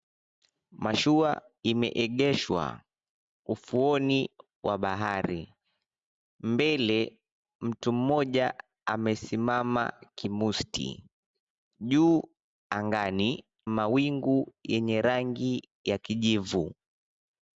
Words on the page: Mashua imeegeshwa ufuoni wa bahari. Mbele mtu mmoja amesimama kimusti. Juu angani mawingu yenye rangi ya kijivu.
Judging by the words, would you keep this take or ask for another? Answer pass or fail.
pass